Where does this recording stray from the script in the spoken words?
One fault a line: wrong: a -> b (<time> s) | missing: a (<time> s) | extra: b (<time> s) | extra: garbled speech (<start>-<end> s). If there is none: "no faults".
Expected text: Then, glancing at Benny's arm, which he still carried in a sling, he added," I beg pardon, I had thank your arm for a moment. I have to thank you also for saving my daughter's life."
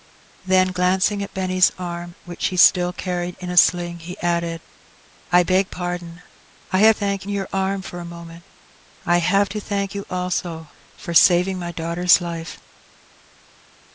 no faults